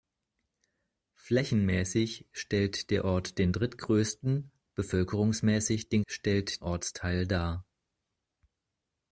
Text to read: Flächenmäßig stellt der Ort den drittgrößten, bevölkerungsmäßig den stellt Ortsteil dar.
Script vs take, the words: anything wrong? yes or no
no